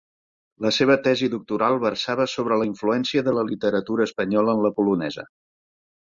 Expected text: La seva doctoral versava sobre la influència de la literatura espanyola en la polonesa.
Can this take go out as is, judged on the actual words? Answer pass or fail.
fail